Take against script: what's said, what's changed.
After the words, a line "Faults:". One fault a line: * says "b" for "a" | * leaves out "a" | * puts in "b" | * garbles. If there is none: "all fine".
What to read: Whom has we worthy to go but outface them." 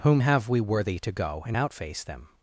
Whom have we worthy to go and outface them."
Faults:
* says "have" for "has"
* says "and" for "but"